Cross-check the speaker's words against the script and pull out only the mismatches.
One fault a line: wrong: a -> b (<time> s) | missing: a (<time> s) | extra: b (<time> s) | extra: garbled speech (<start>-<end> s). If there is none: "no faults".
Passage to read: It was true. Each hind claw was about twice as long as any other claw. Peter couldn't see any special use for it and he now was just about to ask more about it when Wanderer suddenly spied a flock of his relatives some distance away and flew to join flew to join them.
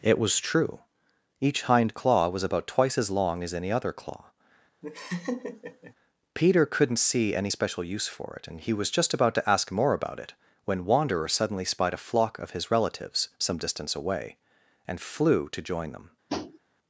missing: now (8.7 s)
missing: flew to join (15.9 s)